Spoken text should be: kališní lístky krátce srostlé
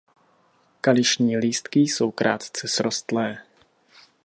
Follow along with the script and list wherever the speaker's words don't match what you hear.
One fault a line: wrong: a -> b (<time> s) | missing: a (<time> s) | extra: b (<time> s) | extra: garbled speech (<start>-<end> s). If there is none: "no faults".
extra: jsou (1.8 s)